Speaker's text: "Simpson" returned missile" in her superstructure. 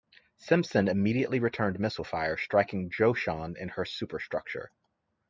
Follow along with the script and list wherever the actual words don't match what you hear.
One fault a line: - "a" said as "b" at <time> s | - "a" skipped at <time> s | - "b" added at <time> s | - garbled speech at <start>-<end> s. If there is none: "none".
- "immediately" added at 0.9 s
- "fire striking Joshan" added at 2.0 s